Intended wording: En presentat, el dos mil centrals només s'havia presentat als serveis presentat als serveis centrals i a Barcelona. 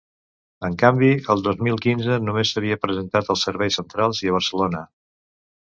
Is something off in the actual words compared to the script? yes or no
yes